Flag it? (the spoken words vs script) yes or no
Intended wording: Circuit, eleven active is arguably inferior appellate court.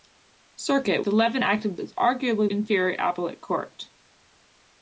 no